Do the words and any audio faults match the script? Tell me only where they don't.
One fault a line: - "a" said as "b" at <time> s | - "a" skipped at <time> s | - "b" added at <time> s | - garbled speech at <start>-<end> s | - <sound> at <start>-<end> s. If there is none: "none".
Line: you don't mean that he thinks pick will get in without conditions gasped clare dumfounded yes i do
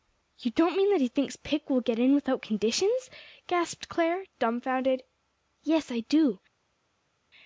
none